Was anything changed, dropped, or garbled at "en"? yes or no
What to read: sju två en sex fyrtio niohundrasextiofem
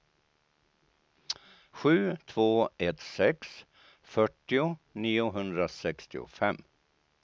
yes